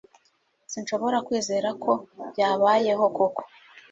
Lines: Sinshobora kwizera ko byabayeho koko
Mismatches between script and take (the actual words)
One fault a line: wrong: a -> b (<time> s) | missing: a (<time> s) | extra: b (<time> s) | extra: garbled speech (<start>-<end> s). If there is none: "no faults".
no faults